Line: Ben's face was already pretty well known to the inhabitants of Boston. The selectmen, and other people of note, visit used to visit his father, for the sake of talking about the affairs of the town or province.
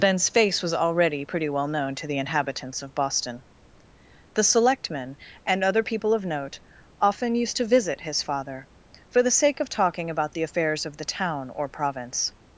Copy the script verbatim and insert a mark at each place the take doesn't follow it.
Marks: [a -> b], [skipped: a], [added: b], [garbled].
Ben's face was already pretty well known to the inhabitants of Boston. The selectmen, and other people of note, [visit -> often] used to visit his father, for the sake of talking about the affairs of the town or province.